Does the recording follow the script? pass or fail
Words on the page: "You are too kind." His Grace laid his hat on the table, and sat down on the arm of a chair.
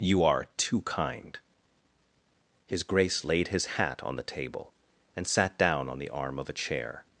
pass